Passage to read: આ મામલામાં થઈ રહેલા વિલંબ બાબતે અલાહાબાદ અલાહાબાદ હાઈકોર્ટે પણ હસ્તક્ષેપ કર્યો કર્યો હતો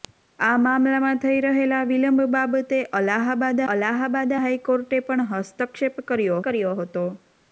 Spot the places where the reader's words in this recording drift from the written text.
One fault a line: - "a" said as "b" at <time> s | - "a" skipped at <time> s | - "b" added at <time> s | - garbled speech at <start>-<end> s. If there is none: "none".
none